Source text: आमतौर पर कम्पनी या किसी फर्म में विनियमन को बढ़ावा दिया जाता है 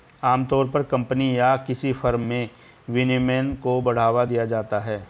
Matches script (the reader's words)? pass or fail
pass